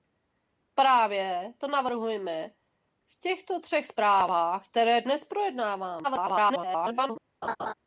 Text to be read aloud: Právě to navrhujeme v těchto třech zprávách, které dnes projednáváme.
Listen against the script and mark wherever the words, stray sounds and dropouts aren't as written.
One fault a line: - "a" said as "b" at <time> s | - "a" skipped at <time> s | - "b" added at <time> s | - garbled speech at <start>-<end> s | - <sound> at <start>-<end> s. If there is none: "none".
- garbled speech at 6.0-7.2 s
- laugh at 7.4-7.7 s